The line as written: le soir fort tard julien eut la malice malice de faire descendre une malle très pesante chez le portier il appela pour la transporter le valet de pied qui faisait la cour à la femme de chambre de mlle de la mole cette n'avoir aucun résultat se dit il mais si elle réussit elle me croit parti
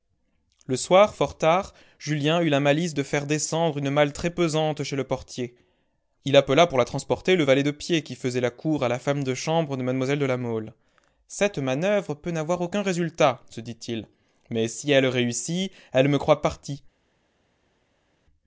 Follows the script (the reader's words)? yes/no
no